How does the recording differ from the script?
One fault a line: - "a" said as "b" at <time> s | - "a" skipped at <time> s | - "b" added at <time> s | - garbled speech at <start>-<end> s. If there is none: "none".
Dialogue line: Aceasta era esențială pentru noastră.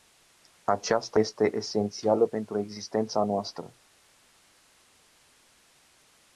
- "era" said as "este" at 1.2 s
- "existența" added at 2.6 s